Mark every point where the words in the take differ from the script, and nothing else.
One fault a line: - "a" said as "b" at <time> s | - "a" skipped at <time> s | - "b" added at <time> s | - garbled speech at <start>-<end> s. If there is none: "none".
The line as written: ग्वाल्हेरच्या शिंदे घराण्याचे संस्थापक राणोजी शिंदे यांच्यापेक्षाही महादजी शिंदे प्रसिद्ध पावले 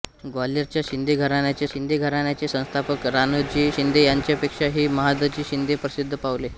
- "शिंदे घराण्याचे" added at 1.7 s